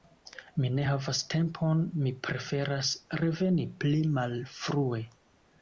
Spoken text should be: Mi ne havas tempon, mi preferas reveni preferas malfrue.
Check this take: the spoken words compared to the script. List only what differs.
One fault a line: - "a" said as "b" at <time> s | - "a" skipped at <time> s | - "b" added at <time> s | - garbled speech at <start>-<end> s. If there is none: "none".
- "preferas" said as "pli" at 3.8 s